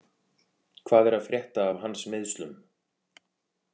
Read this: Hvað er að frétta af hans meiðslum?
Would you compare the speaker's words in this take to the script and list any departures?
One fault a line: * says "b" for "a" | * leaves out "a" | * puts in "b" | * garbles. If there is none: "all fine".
all fine